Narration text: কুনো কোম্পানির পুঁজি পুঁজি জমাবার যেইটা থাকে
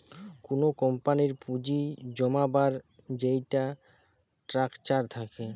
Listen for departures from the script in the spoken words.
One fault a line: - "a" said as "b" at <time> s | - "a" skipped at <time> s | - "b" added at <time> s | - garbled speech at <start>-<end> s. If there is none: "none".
- "পুঁজি" skipped at 1.8 s
- "স্ট্রাকচার" added at 4.4 s